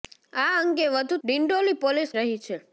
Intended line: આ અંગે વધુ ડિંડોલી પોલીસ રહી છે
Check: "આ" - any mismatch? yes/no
no